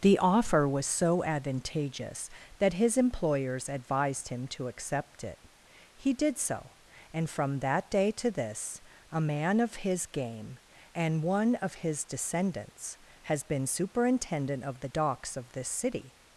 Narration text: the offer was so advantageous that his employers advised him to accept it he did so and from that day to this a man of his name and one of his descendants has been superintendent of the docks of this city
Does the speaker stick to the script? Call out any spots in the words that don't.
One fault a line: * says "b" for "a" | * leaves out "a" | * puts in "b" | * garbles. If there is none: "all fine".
* says "game" for "name"